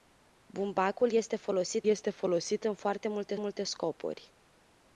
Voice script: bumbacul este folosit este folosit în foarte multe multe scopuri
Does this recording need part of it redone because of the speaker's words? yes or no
no